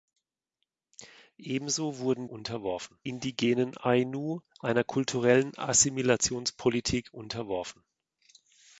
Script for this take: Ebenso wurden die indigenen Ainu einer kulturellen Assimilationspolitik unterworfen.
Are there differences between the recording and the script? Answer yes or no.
yes